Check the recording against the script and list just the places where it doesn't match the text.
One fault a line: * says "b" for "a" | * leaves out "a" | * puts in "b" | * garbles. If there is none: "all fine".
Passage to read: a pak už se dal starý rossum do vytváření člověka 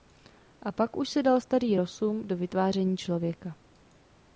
all fine